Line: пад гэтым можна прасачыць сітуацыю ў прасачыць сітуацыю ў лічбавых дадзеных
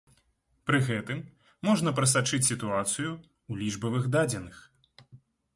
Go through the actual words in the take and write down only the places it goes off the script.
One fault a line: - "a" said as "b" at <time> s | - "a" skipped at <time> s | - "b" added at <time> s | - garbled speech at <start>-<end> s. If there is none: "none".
- "пад" said as "пры" at 0.7 s
- "прасачыць сітуацыю ў" skipped at 3.5 s